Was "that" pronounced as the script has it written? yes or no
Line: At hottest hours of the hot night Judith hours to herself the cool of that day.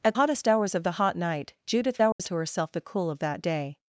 yes